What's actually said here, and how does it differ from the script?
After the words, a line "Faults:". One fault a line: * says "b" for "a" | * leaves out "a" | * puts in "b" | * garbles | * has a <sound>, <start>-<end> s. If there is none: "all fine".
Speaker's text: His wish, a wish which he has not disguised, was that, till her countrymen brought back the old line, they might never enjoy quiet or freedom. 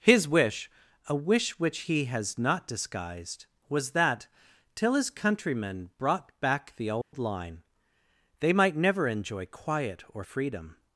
His wish, a wish which he has not disguised, was that, till his countrymen brought back the old line, they might never enjoy quiet or freedom.
Faults:
* says "his" for "her"
* has a dropout, 7.0-7.1 s